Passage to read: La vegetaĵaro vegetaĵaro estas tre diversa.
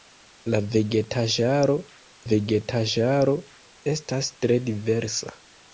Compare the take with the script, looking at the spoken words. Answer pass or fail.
pass